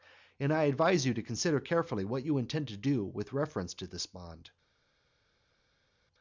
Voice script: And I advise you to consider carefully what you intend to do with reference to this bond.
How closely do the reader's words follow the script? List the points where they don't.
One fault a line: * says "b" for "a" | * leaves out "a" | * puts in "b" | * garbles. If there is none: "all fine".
all fine